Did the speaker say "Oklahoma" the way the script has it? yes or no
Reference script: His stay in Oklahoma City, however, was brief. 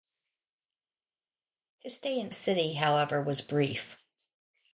no